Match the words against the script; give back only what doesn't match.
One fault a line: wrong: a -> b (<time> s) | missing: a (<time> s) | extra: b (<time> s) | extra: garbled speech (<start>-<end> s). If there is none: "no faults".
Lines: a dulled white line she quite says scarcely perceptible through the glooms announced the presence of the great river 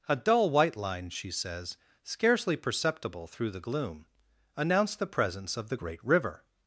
wrong: dulled -> dull (0.1 s)
missing: quite (1.3 s)
wrong: glooms -> gloom (3.6 s)